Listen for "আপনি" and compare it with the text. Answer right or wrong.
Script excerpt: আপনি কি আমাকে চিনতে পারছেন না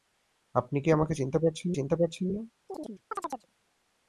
right